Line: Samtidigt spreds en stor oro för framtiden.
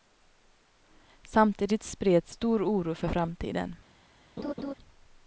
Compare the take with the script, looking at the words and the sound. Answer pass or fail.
fail